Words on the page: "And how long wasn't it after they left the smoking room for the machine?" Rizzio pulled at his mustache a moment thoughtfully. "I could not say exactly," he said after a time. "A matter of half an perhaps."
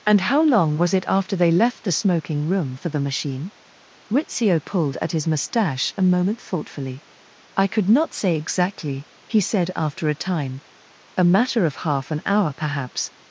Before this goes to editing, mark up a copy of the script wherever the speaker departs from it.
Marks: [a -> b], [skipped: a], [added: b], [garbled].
"And how long [wasn't -> was] it after they left the smoking room for the machine?" Rizzio pulled at his mustache a moment thoughtfully. "I could not say exactly," he said after a time. "A matter of half an [added: hour] perhaps."